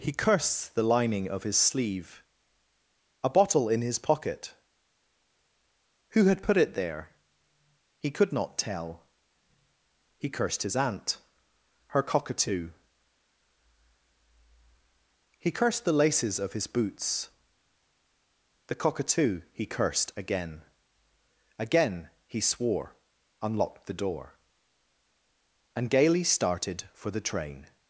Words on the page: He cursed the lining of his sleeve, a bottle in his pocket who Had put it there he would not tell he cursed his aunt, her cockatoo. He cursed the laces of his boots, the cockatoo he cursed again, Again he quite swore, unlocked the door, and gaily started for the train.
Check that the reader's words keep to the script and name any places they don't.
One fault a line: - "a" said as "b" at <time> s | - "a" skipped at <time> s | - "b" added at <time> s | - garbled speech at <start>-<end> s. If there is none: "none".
- "would" said as "could" at 8.1 s
- "quite" skipped at 22.4 s